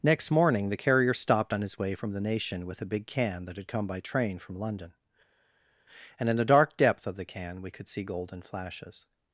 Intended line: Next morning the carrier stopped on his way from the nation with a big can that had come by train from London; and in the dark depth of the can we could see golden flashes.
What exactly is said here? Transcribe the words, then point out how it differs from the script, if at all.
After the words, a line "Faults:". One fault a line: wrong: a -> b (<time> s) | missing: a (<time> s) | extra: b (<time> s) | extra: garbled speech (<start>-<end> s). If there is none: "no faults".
Next morning the carrier stopped on his way from the nation with a big can that had come by train from London; and in the dark depth of the can we could see golden flashes.
Faults:
no faults